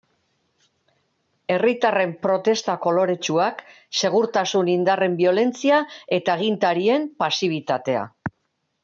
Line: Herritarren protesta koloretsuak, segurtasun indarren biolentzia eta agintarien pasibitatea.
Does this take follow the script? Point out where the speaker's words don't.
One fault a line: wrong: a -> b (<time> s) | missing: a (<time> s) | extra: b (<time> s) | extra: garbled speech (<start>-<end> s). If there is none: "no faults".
no faults